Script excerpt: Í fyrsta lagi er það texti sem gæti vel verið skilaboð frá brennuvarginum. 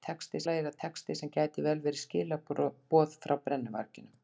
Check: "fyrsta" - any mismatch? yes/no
yes